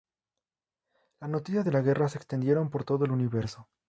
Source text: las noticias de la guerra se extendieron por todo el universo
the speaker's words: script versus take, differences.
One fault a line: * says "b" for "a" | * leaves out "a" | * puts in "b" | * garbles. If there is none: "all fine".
all fine